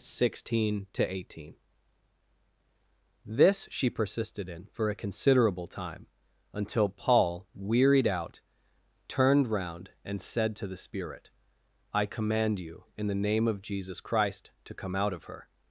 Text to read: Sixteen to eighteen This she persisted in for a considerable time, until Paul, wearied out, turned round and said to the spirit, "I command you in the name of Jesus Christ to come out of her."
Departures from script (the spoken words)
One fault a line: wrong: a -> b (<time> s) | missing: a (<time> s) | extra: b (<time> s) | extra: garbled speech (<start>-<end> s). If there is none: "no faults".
no faults